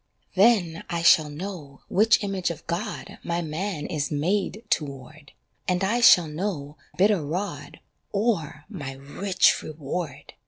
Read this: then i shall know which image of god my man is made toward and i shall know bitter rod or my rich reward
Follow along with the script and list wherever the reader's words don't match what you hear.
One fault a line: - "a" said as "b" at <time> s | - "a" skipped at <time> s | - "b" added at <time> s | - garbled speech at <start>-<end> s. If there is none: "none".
none